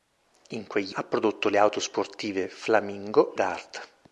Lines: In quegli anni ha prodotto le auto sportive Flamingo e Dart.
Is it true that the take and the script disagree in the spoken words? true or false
true